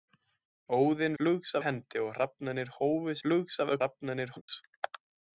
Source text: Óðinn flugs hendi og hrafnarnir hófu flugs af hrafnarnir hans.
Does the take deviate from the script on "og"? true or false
false